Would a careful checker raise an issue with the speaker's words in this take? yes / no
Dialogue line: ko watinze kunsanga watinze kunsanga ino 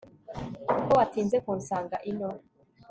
yes